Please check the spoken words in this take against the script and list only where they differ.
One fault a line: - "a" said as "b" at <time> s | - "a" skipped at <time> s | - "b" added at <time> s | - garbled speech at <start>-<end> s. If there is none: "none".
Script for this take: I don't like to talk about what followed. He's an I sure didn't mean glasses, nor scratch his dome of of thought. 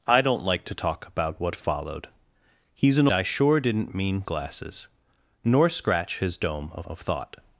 none